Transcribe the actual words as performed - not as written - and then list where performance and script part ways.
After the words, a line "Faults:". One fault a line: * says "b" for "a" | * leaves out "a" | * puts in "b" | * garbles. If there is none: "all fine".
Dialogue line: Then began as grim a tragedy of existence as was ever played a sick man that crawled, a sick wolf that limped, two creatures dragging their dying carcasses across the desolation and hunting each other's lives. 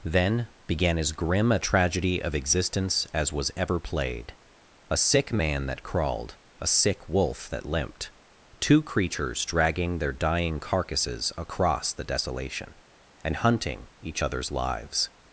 Then began as grim a tragedy of existence as was ever played a sick man that crawled, a sick wolf that limped, two creatures dragging their dying carcasses across the desolation and hunting each other's lives.
Faults:
all fine